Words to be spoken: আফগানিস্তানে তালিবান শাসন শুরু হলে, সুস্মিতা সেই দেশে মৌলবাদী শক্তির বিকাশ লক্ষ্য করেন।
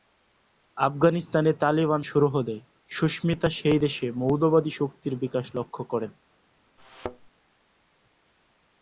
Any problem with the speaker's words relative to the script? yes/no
yes